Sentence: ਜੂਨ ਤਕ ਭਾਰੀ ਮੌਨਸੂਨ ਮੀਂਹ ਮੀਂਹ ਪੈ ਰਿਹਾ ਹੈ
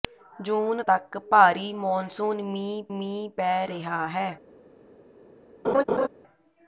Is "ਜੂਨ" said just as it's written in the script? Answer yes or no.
yes